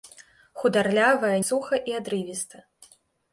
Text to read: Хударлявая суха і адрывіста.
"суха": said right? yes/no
yes